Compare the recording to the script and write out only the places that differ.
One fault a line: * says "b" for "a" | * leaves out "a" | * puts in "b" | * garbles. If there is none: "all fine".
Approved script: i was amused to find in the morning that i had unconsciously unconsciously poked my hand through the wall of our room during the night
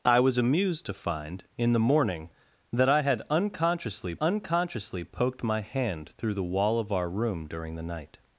all fine